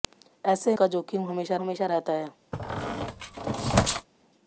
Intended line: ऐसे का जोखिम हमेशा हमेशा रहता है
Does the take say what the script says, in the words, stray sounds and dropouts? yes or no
no